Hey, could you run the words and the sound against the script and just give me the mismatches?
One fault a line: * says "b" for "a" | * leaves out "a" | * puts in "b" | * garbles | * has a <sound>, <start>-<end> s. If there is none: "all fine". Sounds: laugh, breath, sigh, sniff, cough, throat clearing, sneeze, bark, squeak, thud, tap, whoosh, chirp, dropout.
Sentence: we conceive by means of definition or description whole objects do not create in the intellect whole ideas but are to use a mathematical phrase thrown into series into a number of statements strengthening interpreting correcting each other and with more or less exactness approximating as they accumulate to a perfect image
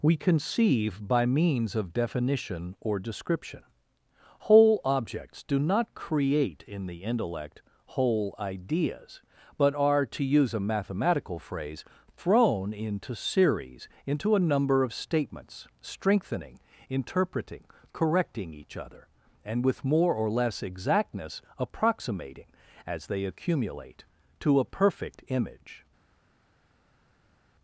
all fine